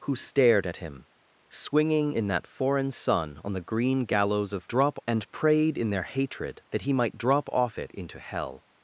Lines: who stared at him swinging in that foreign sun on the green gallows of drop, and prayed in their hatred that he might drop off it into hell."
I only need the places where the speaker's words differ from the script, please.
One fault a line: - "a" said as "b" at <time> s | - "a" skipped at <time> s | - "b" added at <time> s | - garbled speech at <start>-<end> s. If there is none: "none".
none